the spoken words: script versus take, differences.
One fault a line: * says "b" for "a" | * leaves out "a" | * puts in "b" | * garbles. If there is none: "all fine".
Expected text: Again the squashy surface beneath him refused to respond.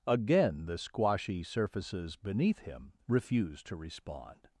* says "surfaces" for "surface"